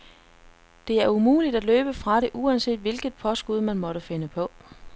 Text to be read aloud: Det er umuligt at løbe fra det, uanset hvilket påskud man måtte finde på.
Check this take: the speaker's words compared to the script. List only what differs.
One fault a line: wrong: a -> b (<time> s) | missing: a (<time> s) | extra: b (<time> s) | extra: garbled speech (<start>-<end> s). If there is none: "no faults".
no faults